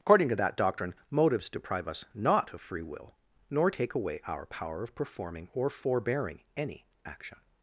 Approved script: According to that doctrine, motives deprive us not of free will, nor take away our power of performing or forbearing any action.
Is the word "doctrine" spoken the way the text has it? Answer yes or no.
yes